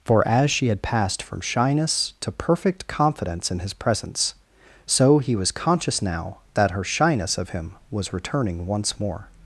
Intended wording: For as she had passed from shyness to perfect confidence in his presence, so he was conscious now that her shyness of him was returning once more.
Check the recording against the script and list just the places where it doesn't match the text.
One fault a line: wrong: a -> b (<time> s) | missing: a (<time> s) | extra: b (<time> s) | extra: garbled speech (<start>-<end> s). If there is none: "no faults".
no faults